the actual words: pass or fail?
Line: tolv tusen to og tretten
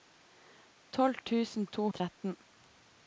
pass